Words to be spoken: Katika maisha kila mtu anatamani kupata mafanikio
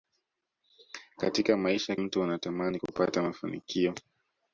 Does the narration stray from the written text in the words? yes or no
yes